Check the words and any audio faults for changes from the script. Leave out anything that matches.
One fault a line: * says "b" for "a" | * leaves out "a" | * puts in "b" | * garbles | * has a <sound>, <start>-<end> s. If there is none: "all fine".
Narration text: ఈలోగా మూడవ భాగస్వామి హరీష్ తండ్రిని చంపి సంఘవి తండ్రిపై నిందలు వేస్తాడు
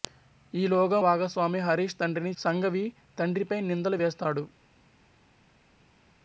* leaves out "మూడవ"
* leaves out "చంపి"